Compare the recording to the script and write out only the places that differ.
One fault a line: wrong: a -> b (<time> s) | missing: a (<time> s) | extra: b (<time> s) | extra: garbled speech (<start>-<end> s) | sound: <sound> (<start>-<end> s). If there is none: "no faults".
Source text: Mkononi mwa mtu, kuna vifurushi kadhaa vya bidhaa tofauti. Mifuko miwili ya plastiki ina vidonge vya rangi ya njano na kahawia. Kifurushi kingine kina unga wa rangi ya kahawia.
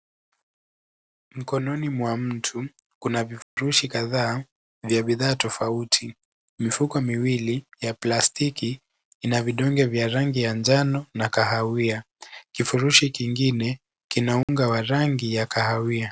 sound: dropout (3.4-3.6 s)
sound: dropout (14.4-14.5 s)